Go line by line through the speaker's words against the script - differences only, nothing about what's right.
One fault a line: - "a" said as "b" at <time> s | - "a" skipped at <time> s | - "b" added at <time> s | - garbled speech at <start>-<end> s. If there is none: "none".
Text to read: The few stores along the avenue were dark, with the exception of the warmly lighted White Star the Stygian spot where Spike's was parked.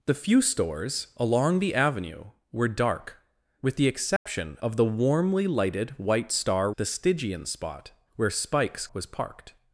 none